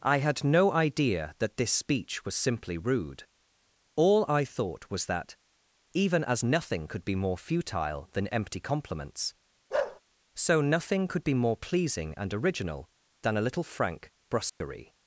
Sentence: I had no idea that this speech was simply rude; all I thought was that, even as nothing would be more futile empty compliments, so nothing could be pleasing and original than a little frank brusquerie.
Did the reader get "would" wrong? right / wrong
wrong